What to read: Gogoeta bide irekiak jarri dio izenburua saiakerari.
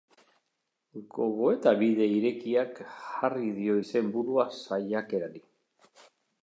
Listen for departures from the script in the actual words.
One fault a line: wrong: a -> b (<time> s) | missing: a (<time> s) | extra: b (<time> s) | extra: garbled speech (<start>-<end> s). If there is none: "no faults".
no faults